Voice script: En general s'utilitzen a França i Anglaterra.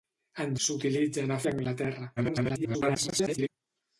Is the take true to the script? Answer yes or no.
no